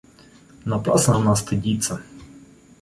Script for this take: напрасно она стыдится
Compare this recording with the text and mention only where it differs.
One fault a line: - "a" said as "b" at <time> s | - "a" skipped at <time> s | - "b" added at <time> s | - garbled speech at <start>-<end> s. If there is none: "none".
none